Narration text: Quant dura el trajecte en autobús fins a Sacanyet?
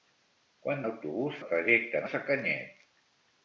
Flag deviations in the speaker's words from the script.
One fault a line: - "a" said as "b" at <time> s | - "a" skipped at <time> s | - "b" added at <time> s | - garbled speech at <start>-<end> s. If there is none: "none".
- "dura" said as "autobús" at 0.9 s
- "autobús fins" skipped at 2.1 s